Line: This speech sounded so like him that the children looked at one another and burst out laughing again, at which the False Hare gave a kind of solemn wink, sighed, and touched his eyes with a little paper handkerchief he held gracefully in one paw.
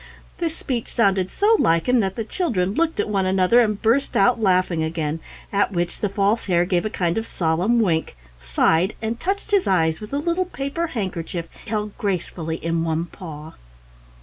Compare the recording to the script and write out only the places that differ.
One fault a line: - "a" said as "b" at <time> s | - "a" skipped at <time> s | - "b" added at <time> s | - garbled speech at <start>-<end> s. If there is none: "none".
- "he" skipped at 11.5 s